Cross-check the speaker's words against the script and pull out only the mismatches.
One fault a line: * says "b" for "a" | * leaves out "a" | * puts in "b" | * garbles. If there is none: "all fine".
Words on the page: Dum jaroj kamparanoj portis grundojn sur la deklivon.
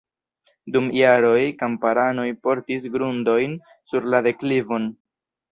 all fine